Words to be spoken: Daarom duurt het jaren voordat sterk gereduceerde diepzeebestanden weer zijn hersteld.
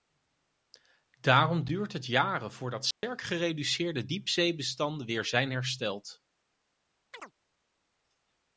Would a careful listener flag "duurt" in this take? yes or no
no